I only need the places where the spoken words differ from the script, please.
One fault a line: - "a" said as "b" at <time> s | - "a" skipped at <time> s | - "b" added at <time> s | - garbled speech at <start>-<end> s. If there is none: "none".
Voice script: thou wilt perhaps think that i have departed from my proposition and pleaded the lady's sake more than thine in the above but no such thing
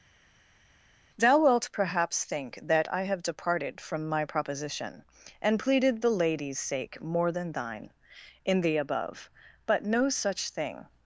none